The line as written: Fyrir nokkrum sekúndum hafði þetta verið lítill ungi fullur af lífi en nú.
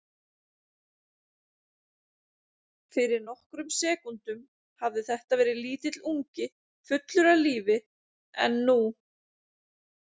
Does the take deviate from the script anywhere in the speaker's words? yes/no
no